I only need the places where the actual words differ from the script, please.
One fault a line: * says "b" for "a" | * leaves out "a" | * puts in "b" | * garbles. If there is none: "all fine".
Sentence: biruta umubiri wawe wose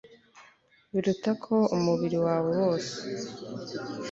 * puts in "ko"